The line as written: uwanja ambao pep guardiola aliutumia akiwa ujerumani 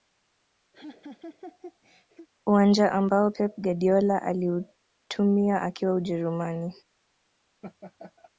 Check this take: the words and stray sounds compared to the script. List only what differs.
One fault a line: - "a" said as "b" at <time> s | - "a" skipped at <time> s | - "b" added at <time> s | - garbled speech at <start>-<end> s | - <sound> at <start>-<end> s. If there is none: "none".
- laugh at 0.7-2.3 s
- laugh at 7.6-8.3 s